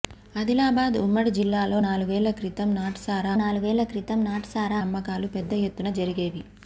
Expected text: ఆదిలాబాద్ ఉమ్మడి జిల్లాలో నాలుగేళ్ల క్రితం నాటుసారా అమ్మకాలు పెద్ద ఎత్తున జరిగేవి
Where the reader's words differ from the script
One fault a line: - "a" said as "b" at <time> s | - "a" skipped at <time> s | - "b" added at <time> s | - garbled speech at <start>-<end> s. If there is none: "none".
- "నాలుగేళ్ల క్రితం నాటుసారా" added at 3.4 s